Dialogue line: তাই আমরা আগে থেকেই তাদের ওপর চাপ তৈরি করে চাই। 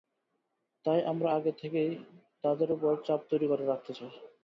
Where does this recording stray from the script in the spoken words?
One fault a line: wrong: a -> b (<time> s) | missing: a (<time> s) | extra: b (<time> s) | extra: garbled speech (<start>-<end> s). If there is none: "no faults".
extra: রাখতে (3.7 s)